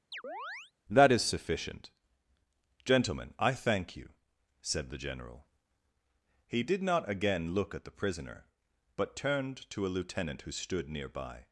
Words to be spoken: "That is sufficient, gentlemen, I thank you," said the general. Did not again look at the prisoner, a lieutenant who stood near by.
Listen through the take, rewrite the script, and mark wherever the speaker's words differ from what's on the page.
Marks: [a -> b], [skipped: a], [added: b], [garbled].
"That is sufficient, gentlemen, I thank you," said the general. [added: He] Did not again look at the prisoner, [added: but turned to] a lieutenant who stood near by.